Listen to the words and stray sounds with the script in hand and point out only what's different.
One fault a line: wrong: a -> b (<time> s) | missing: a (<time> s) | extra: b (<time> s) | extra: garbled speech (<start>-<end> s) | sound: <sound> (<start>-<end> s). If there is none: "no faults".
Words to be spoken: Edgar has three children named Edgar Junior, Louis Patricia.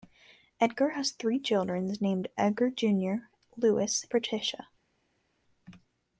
no faults